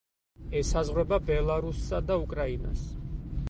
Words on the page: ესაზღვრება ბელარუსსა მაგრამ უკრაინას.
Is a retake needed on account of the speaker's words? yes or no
yes